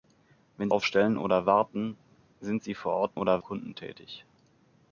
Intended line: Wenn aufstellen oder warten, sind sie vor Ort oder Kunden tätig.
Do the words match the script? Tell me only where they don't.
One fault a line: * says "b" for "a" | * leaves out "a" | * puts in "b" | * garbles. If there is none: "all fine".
all fine